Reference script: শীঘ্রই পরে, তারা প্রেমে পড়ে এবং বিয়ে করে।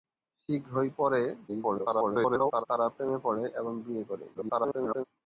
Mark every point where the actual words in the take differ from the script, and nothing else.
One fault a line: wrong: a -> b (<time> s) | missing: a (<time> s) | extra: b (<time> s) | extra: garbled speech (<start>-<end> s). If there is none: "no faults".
extra: garbled speech (1.5-2.7 s)
extra: garbled speech (4.3-5.0 s)